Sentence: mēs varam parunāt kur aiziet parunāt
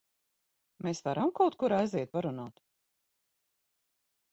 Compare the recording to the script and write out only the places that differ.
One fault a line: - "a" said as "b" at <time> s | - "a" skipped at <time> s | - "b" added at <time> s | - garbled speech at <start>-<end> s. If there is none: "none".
- "parunāt" said as "kaut" at 1.4 s